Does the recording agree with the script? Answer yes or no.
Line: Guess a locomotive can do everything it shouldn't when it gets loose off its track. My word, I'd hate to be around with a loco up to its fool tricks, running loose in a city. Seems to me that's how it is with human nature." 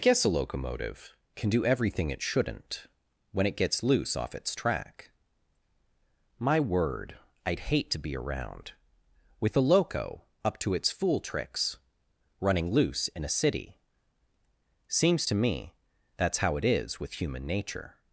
yes